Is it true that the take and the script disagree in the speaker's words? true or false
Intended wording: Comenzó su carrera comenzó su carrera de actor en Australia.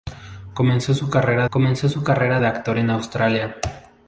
false